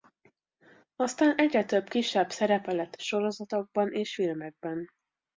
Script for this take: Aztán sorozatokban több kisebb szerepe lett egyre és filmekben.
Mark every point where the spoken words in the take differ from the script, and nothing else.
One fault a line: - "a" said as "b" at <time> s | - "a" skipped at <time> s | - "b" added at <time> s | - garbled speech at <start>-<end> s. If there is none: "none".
- "sorozatokban" said as "egyre" at 1.4 s
- "egyre" said as "sorozatokban" at 3.0 s